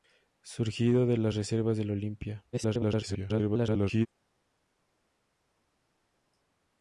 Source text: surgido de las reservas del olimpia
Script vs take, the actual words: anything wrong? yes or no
yes